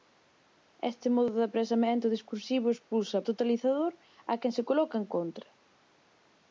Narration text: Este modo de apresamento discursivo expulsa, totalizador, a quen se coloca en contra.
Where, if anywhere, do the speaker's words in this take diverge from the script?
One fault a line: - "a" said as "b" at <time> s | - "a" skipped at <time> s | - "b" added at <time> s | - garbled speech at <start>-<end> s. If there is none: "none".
none